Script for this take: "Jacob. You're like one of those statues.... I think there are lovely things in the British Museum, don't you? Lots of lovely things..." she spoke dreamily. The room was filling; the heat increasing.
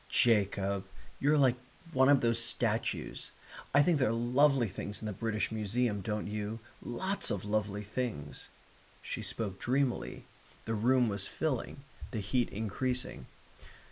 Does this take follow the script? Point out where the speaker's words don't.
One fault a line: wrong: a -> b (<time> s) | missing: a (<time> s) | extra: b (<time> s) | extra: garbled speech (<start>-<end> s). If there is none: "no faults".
no faults